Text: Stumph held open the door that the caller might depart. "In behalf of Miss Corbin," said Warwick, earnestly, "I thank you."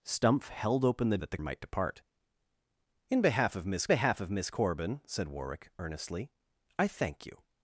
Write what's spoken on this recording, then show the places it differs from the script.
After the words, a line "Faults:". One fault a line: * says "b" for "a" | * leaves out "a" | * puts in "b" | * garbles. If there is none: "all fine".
Stumph held open the that the might depart. "In behalf of Miss behalf of Miss Corbin," said Warwick, earnestly, "I thank you."
Faults:
* leaves out "door"
* leaves out "caller"
* puts in "behalf of Miss"